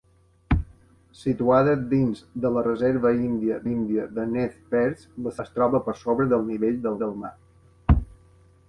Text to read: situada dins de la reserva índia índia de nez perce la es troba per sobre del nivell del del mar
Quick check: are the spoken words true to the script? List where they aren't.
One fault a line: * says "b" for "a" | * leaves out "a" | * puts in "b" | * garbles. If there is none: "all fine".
all fine